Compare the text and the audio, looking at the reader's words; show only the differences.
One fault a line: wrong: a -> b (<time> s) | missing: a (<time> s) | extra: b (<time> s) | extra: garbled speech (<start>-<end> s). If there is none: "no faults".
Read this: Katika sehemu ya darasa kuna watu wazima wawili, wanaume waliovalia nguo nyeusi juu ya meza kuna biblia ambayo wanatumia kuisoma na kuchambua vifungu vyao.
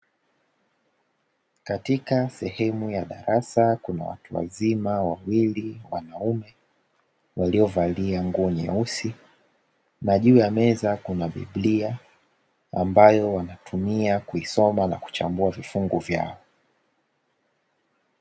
extra: na (10.0 s)